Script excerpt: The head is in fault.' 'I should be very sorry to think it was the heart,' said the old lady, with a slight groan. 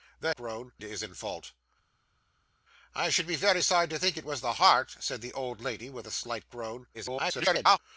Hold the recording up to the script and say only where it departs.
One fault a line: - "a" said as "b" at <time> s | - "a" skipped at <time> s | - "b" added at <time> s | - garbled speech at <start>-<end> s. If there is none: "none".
- "head" said as "groan" at 0.3 s
- garbled speech at 6.9-7.8 s